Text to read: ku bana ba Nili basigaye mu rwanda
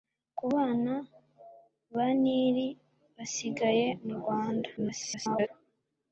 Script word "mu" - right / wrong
right